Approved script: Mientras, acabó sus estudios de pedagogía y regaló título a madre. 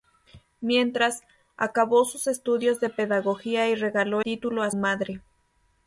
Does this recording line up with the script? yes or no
yes